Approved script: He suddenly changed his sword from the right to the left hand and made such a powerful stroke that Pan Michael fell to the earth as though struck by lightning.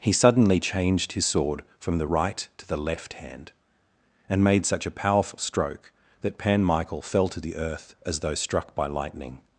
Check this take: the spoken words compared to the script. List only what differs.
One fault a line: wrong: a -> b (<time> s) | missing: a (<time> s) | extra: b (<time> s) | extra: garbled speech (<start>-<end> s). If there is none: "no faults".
no faults